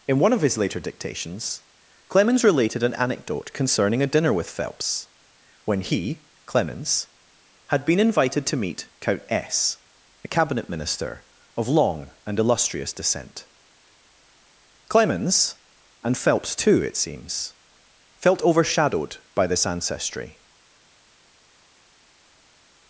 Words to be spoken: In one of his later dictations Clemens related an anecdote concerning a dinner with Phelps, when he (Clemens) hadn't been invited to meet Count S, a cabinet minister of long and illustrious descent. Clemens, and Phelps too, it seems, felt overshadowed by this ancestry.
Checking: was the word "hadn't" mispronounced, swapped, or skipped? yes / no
yes